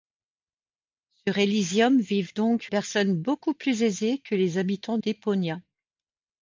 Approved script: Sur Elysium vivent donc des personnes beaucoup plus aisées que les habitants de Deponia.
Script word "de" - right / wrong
wrong